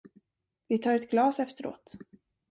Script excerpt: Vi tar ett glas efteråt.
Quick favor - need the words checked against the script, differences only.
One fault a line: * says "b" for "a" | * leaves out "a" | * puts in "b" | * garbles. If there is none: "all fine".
all fine